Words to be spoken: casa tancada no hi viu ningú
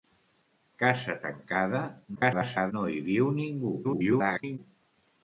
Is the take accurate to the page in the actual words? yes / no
no